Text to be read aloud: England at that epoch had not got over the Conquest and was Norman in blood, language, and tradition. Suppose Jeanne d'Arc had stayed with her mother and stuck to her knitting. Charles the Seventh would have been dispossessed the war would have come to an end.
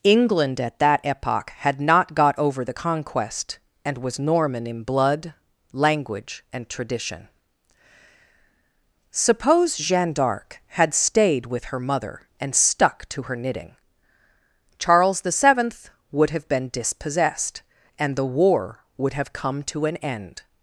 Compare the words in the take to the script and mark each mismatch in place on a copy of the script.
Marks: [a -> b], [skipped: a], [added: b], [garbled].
England at that epoch had not got over the Conquest and was Norman in blood, language, and tradition. Suppose Jeanne d'Arc had stayed with her mother and stuck to her knitting. Charles the Seventh would have been dispossessed [added: and] the war would have come to an end.